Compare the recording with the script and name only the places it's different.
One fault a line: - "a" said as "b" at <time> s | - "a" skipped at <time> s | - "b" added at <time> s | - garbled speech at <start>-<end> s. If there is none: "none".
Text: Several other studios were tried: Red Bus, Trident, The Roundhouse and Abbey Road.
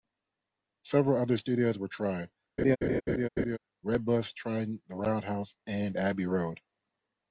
none